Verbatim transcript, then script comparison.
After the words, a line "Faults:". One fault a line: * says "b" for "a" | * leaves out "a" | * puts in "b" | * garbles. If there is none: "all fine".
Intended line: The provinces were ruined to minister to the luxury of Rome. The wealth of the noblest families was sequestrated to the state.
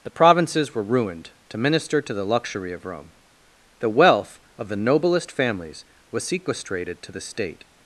The provinces were ruined to minister to the luxury of Rome. The wealth of the noblest families was sequestrated to the state.
Faults:
all fine